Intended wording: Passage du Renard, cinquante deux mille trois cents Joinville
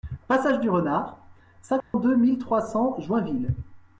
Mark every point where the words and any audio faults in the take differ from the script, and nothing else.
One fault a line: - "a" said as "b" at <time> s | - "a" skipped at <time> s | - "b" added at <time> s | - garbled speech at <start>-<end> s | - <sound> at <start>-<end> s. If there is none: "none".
- dropout at 1.8-1.9 s